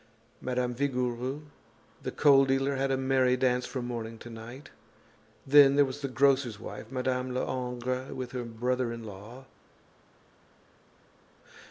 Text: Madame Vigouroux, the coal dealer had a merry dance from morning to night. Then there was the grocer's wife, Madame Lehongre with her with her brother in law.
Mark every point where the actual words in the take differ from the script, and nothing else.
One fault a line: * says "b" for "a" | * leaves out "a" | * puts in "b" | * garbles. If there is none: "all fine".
* leaves out "with her"